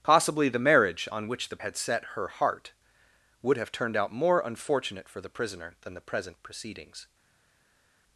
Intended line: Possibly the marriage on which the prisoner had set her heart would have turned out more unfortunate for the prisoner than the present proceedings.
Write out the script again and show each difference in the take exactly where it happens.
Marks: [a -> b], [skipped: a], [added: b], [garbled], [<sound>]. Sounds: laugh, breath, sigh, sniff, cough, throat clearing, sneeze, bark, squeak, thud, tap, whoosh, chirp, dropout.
Possibly the marriage on which the [skipped: prisoner] had set her heart would have turned out more unfortunate for the prisoner than the present proceedings.